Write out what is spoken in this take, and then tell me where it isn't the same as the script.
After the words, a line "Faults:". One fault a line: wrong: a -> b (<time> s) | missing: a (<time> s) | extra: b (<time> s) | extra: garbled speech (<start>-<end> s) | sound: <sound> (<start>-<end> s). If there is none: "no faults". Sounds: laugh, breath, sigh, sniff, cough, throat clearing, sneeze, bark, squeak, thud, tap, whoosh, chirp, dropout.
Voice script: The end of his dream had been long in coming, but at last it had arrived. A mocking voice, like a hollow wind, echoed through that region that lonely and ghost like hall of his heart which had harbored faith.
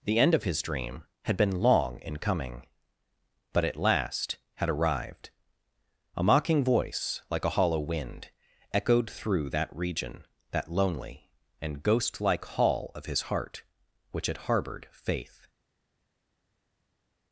The end of his dream had been long in coming, but at last had arrived. A mocking voice, like a hollow wind, echoed through that region that lonely and ghost like hall of his heart which had harbored faith.
Faults:
missing: it (4.4 s)